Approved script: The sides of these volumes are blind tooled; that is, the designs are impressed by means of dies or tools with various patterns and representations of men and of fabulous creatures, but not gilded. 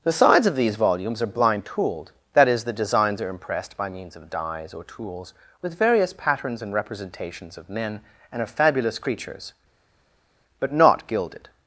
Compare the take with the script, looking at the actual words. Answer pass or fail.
pass